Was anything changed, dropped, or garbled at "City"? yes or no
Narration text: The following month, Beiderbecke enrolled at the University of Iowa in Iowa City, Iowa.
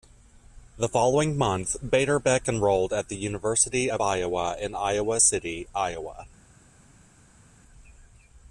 no